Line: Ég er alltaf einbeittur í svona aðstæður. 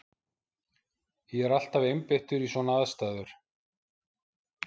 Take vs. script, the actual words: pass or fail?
pass